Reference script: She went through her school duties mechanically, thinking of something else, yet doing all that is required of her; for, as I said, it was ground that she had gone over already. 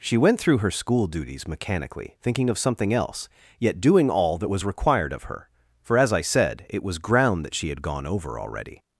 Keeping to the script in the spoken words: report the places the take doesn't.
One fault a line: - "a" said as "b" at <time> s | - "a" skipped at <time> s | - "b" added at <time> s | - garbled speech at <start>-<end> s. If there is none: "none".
- "is" said as "was" at 4.5 s